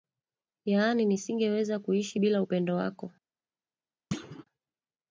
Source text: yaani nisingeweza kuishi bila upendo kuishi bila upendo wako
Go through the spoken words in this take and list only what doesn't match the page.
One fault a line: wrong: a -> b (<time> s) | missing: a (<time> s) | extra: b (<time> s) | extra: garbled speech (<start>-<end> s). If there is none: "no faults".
missing: kuishi bila upendo (2.7 s)